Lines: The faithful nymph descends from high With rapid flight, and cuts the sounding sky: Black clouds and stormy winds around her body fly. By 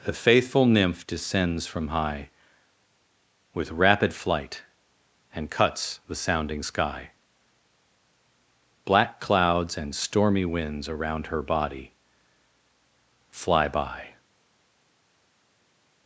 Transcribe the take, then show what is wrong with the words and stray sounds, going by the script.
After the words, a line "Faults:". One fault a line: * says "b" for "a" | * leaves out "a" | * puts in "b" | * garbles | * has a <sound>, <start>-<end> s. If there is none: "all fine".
The faithful nymph descends from high With rapid flight, and cuts the sounding sky: Black clouds and stormy winds around her body fly. By
Faults:
all fine